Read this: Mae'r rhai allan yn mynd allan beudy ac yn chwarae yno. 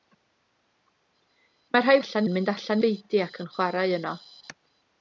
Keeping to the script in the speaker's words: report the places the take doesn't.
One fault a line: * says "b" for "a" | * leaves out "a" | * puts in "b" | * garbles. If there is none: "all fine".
all fine